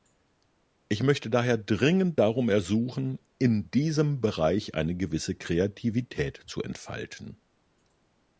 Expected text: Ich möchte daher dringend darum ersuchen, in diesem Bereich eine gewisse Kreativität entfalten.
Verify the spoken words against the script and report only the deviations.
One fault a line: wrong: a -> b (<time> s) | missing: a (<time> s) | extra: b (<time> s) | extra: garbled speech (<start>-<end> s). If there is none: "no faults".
extra: zu (6.5 s)